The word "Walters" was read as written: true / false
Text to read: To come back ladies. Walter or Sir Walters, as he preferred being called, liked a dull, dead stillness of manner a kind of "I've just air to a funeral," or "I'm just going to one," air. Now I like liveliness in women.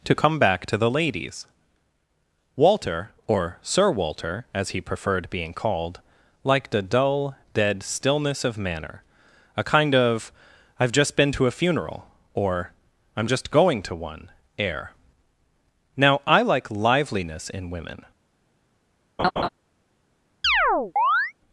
false